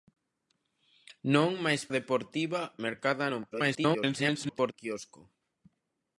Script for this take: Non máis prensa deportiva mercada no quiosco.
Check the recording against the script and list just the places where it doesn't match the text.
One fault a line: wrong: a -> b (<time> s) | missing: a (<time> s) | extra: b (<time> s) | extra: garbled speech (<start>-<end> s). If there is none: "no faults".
missing: prensa (1.8 s)
extra: garbled speech (3.5-4.7 s)